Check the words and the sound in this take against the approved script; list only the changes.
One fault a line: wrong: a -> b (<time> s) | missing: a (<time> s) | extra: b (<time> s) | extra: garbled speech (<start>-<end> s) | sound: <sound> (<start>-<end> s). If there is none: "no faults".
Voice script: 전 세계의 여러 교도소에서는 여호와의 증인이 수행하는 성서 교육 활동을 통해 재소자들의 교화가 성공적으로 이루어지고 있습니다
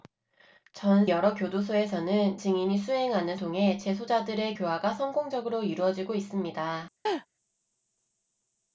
missing: 세계의 (1.1 s)
missing: 여호와의 (2.4 s)
missing: 성서 교육 활동을 (3.4 s)
sound: laugh (7.1-7.3 s)